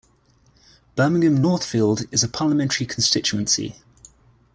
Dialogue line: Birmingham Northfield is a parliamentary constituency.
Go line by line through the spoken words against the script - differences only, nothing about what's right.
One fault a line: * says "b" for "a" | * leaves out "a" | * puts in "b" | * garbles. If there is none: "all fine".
all fine